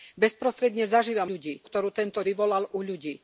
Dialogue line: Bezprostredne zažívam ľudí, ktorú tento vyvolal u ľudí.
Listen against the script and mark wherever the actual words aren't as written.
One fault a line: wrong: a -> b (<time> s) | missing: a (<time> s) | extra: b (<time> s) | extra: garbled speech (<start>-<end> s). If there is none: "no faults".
no faults